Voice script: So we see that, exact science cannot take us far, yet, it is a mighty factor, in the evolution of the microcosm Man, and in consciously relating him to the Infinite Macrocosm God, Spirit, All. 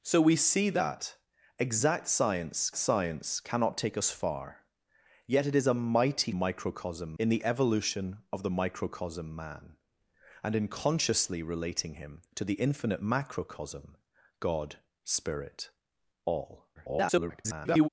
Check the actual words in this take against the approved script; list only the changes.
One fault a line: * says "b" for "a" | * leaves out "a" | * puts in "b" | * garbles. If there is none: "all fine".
* puts in "science"
* says "microcosm" for "factor"
* garbles